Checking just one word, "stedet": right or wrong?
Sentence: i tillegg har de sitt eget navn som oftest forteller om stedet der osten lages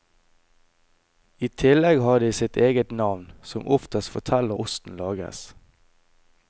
wrong